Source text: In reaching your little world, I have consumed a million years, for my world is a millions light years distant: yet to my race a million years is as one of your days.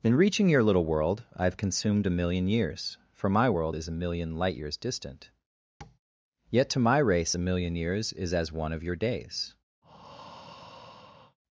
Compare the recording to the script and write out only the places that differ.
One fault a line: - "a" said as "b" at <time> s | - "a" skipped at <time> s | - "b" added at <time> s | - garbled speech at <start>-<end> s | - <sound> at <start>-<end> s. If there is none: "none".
- "millions" said as "million" at 4.0 s
- tap at 5.8-6.0 s
- breath at 9.8-11.4 s